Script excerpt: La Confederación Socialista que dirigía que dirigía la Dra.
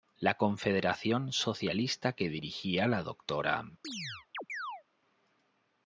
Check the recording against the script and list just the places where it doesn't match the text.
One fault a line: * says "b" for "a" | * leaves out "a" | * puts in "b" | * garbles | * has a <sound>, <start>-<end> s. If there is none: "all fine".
* leaves out "que dirigía"
* has a chirp, 3.8-4.8 s